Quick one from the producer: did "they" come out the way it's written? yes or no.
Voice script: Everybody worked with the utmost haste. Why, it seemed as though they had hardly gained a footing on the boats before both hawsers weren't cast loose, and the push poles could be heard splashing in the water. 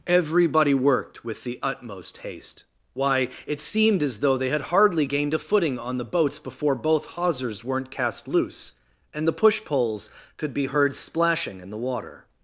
yes